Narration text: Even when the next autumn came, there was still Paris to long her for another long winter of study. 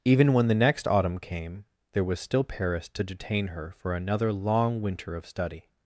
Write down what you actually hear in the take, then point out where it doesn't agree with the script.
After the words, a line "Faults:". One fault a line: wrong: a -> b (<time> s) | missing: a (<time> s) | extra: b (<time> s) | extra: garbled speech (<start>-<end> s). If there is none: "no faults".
Even when the next autumn came, there was still Paris to detain her for another long winter of study.
Faults:
wrong: long -> detain (3.0 s)